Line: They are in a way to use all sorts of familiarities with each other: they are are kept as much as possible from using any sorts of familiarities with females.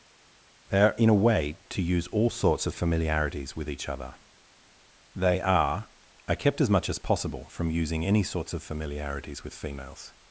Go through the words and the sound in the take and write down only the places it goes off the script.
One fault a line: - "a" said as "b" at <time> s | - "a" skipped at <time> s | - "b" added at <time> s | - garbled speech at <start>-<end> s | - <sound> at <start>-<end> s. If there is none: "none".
none